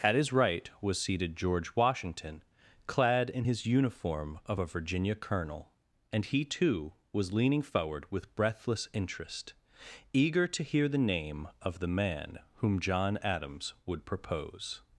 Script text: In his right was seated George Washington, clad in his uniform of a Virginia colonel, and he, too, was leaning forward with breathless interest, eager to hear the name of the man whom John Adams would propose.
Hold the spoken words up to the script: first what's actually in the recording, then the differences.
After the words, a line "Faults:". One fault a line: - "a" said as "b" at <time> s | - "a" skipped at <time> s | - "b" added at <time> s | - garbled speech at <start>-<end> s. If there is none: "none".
At his right was seated George Washington, clad in his uniform of a Virginia colonel, and he, too, was leaning forward with breathless interest, eager to hear the name of the man whom John Adams would propose.
Faults:
- "In" said as "At" at 0.0 s